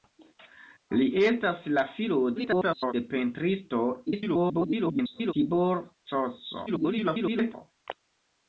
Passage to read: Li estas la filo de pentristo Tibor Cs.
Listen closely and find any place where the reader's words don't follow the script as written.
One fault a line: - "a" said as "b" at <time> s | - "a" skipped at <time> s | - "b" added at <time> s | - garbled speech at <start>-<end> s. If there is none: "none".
- garbled speech at 2.4-2.9 s
- garbled speech at 4.1-5.3 s
- garbled speech at 6.7-7.5 s